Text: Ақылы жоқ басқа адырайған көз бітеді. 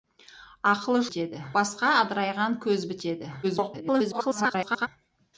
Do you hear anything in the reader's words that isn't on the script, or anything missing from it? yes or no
yes